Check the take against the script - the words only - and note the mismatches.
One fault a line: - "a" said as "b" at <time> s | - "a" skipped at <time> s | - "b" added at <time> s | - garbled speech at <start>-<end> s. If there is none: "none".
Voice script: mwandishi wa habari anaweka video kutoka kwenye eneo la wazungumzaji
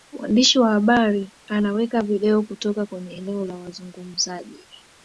none